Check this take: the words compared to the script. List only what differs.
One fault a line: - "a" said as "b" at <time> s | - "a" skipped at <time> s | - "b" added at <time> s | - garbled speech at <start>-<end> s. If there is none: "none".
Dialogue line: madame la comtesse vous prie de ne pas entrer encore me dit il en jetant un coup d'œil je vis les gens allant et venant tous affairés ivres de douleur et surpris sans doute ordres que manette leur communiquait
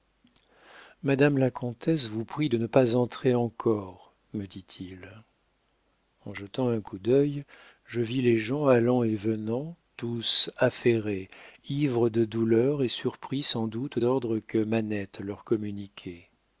none